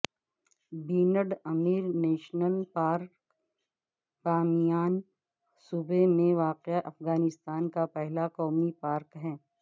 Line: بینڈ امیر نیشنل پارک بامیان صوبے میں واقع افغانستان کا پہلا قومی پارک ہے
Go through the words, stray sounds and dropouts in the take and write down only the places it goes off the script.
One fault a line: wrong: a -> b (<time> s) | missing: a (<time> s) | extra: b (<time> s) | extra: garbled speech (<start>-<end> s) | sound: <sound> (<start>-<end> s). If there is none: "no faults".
no faults